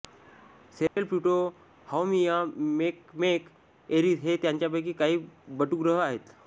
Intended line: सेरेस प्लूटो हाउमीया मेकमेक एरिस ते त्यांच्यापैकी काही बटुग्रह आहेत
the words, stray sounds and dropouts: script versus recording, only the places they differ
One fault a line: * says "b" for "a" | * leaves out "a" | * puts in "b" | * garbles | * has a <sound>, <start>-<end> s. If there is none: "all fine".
* has a dropout, 0.9-1.0 s
* says "हे" for "ते"